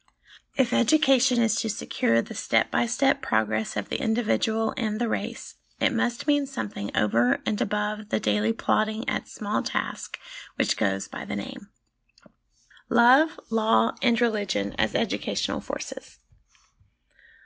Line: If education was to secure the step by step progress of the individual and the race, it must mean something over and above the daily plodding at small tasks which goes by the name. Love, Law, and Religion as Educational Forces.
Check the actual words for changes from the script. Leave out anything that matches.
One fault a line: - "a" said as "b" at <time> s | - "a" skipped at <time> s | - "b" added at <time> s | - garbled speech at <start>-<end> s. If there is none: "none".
- "was" said as "is" at 1.4 s